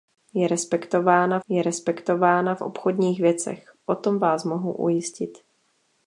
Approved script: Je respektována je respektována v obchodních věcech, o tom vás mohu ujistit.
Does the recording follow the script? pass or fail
pass